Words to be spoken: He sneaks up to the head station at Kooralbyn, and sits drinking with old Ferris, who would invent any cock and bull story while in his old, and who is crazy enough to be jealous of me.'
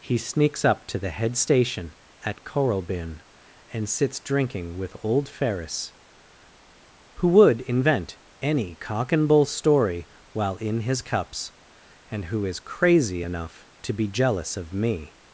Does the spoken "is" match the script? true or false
true